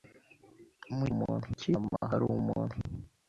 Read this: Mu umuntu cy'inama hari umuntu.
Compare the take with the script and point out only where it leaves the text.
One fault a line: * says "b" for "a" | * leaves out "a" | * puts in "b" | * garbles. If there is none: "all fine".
all fine